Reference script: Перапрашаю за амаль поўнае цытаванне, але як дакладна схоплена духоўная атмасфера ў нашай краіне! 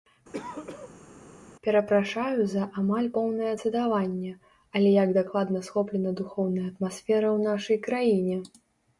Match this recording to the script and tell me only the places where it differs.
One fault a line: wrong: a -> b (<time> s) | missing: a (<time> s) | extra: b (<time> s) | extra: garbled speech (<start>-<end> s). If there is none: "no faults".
no faults